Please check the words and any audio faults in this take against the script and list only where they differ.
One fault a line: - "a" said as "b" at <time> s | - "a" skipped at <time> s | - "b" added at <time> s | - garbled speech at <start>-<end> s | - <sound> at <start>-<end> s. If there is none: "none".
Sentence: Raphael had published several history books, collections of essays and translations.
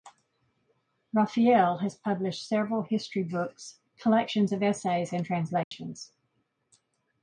- "had" said as "has" at 1.8 s
- dropout at 5.6-5.7 s